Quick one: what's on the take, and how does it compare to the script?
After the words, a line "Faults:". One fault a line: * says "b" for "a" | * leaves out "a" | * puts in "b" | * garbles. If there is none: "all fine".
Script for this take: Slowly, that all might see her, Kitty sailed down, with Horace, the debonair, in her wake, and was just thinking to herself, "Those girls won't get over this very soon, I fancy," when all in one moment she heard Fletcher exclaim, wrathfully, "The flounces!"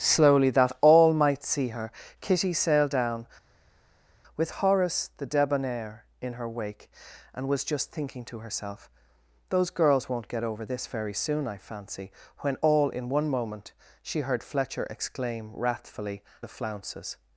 Slowly, that all might see her, Kitty sailed down, with Horace, the debonair, in her wake, and was just thinking to herself, "Those girls won't get over this very soon, I fancy," when all in one moment she heard Fletcher exclaim, wrathfully, "The flounces!"
Faults:
all fine